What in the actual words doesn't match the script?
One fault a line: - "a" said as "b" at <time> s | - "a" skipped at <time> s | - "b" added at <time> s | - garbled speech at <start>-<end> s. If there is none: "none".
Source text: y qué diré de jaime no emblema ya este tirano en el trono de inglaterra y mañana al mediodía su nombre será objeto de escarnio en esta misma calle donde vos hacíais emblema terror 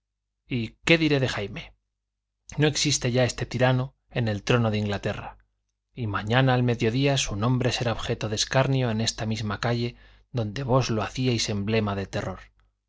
- "emblema" said as "existe" at 2.6 s
- "lo" added at 10.9 s
- "de" added at 11.9 s